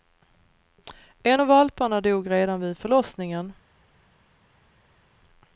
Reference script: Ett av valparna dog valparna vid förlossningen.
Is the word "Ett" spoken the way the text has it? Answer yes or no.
no